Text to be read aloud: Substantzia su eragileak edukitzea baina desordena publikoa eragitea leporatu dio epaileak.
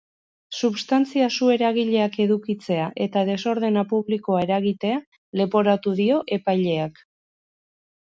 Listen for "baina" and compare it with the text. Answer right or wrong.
wrong